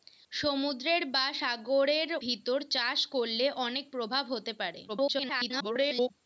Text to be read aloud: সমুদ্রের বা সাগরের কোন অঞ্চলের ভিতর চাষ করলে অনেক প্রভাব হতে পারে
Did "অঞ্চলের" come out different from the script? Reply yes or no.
yes